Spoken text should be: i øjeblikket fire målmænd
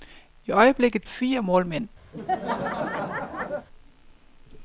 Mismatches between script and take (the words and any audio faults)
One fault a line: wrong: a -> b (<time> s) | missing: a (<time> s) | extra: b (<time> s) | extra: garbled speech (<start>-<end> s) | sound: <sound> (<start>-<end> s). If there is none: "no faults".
sound: laugh (2.1-3.7 s)